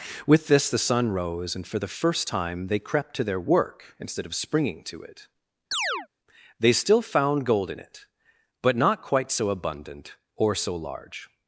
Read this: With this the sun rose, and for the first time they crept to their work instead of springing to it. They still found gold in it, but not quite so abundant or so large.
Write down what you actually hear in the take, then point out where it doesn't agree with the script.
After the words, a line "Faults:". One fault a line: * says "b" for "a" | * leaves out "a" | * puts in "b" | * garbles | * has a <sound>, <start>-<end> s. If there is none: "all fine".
With this the sun rose, and for the first time they crept to their work instead of springing to it. They still found gold in it, but not quite so abundant or so large.
Faults:
* has a chirp, 5.7-6.1 s